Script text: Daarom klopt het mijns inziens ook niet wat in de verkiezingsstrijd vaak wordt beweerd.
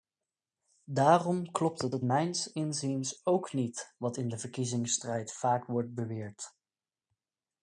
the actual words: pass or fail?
fail